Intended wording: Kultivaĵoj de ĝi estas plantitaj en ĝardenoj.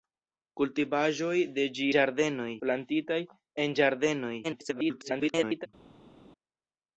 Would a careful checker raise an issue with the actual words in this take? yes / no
yes